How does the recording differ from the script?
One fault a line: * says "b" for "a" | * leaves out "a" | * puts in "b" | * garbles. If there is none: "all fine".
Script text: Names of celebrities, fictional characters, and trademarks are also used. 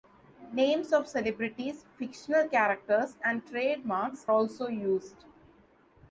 * leaves out "are"